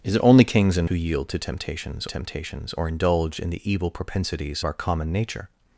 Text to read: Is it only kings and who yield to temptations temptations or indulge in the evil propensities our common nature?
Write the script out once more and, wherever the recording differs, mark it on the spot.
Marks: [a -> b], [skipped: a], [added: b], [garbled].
Is it only kings and who yield to temptations temptations or indulge in the evil propensities our common nature?